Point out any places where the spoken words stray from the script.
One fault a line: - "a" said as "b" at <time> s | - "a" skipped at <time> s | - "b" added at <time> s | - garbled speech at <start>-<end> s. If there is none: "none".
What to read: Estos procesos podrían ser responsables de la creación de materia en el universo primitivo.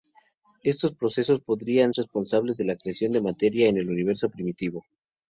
- "ser" skipped at 1.9 s